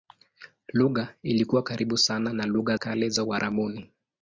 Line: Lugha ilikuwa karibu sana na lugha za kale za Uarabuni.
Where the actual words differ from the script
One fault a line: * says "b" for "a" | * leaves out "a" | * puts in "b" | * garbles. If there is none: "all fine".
* leaves out "za"